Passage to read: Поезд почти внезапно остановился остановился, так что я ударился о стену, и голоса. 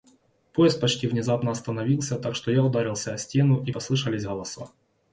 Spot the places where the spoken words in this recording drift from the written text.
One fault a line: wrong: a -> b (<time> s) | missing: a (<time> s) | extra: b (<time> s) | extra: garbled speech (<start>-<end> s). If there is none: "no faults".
missing: остановился (2.2 s)
extra: послышались (3.7 s)